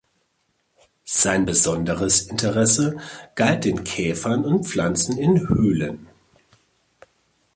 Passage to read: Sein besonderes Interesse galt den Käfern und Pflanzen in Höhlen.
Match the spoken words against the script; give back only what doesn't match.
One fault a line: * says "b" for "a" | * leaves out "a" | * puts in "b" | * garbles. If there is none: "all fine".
all fine